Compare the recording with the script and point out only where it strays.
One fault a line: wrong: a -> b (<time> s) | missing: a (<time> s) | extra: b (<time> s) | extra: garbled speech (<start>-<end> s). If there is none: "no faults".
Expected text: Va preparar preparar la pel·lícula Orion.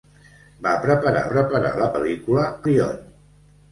no faults